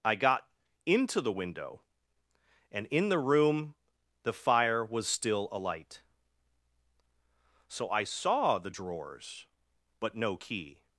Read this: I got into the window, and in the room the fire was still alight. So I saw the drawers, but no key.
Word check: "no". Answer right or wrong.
right